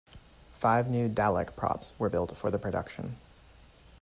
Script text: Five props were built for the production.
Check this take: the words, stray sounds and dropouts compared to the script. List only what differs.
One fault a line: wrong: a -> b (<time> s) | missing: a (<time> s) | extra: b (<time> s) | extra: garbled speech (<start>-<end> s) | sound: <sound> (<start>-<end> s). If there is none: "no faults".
extra: new Dalek (0.9 s)